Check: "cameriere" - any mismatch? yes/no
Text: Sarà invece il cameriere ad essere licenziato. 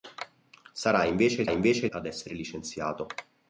yes